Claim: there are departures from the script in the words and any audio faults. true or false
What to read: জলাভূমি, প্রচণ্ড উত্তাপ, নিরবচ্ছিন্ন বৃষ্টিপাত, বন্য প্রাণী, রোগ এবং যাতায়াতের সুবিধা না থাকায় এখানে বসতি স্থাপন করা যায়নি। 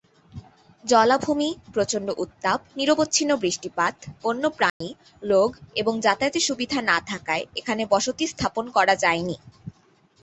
true